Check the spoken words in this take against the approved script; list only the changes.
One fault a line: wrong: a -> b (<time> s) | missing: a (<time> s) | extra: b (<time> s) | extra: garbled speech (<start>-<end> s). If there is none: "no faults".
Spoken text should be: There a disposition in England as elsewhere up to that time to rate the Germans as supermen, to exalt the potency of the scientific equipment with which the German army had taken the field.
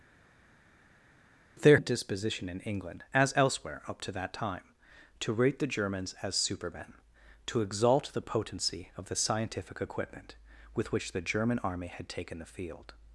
no faults